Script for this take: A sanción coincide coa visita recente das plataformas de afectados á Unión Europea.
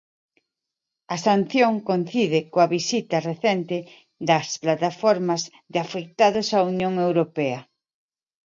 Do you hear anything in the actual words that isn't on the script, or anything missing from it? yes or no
no